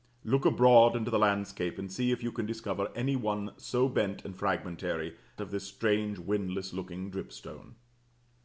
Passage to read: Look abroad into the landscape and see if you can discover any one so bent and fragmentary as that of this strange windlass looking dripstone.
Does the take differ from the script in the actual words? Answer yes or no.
yes